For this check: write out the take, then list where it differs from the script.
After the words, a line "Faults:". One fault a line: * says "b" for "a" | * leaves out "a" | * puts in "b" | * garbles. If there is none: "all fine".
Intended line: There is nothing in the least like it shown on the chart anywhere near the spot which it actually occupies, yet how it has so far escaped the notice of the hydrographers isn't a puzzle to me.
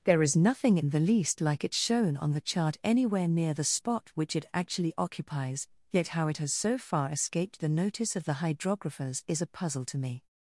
There is nothing in the least like it shown on the chart anywhere near the spot which it actually occupies, yet how it has so far escaped the notice of the hydrographers is a puzzle to me.
Faults:
* says "is" for "isn't"